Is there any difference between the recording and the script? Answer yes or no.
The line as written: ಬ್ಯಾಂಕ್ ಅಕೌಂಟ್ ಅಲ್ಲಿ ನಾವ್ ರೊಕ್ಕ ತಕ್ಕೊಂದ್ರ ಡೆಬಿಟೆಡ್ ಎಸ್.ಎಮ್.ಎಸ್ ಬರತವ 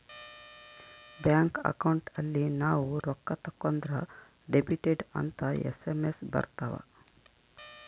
yes